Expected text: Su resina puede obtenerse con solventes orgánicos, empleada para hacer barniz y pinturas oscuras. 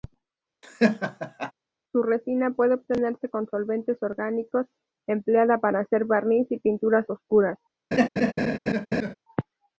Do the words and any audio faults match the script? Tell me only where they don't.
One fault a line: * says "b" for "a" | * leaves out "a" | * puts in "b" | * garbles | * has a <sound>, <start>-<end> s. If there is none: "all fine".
* has a laugh, 0.6-1.5 s
* has a laugh, 7.9-9.1 s